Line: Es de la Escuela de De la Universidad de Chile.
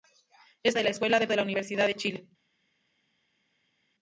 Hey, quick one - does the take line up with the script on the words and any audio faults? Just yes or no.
yes